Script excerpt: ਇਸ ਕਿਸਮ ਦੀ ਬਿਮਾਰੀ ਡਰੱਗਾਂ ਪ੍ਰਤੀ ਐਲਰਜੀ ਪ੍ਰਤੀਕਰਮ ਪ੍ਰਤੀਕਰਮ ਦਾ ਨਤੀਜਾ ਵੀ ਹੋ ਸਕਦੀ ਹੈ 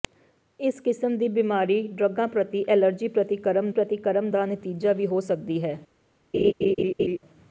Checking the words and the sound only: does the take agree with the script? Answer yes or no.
no